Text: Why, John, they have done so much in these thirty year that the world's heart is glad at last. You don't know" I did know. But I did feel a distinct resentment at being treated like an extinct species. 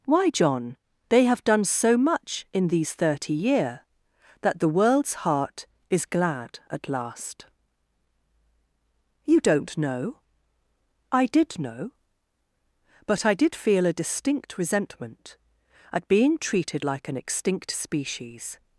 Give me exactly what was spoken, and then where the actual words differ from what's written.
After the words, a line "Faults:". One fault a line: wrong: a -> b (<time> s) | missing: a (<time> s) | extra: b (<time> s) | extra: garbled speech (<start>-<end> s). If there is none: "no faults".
Why, John, they have done so much in these thirty year that the world's heart is glad at last. You don't know" I did know. But I did feel a distinct resentment at being treated like an extinct species.
Faults:
no faults